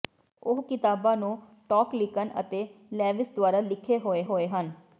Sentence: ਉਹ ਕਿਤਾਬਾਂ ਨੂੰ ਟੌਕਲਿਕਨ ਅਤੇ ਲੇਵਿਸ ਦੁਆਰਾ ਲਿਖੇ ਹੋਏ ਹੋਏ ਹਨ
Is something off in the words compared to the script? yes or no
no